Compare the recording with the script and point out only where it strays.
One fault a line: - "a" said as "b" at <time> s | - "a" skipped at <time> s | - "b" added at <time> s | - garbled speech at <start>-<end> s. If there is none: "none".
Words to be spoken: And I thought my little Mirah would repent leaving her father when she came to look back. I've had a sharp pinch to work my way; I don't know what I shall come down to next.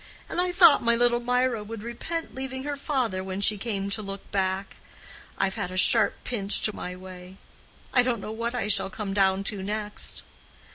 - "work" skipped at 6.7 s